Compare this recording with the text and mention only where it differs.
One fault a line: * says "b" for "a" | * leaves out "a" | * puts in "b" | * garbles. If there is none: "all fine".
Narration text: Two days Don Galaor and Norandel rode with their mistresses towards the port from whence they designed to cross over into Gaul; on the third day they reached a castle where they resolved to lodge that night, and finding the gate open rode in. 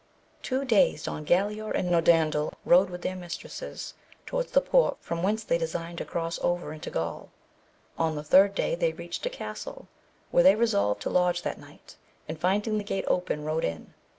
all fine